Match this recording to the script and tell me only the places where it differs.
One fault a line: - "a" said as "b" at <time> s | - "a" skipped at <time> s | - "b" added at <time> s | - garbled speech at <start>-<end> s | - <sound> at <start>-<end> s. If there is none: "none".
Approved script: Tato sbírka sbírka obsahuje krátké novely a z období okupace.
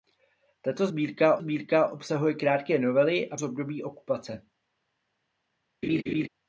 - laugh at 5.8-6.3 s